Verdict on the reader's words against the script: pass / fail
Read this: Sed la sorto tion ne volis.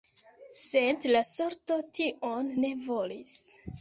pass